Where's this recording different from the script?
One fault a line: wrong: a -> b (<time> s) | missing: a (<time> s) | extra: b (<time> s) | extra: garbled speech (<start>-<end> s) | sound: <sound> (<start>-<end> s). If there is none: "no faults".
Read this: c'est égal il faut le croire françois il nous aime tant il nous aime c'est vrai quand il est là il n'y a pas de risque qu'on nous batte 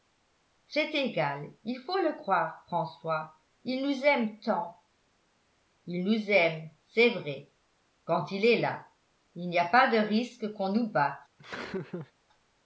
sound: laugh (11.4-12.1 s)